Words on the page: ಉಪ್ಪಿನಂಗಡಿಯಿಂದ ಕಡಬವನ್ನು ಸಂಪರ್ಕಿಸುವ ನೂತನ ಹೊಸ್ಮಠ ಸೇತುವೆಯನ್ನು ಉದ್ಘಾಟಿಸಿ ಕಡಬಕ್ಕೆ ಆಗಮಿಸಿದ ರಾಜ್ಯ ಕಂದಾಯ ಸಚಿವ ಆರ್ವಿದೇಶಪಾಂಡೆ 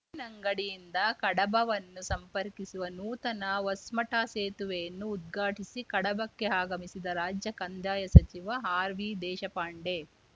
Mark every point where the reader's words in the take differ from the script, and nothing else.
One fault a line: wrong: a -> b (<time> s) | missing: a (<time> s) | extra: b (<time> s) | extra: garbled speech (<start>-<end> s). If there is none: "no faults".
no faults